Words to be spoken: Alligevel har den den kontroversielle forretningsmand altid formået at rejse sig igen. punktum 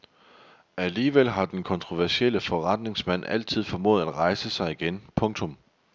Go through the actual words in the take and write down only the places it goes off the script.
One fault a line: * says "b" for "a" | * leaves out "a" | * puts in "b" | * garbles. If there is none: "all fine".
* leaves out "den"